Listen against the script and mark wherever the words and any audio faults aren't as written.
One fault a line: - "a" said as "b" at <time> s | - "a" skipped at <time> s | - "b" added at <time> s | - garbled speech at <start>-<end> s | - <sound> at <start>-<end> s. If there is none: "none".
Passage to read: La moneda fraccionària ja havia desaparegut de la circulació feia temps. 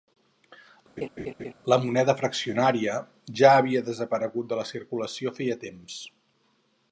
- laugh at 1.0-1.5 s